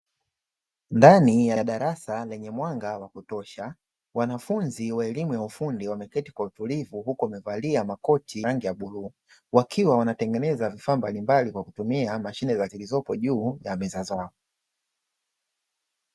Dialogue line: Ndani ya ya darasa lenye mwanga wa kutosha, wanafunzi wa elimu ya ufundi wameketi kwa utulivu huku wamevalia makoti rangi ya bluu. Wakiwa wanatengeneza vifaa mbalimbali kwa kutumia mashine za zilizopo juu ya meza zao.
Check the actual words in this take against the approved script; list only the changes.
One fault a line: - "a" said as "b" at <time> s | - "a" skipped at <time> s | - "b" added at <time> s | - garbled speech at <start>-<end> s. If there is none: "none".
none